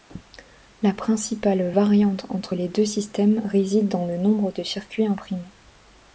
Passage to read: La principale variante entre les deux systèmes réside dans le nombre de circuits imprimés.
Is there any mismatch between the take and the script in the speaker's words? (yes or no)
no